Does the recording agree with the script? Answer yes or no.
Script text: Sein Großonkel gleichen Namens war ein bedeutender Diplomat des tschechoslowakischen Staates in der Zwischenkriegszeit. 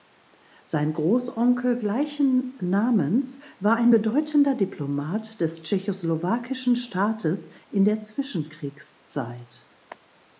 yes